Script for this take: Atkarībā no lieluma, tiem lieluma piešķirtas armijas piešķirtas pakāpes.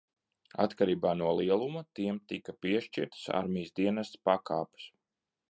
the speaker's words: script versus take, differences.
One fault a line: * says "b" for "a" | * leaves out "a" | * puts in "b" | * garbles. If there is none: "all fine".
* says "tika" for "lieluma"
* says "dienesta" for "piešķirtas"